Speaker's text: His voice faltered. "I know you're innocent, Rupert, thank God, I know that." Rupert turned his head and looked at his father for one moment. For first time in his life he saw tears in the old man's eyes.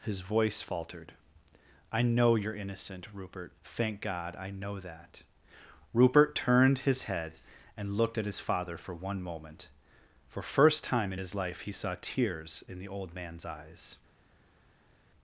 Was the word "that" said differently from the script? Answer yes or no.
no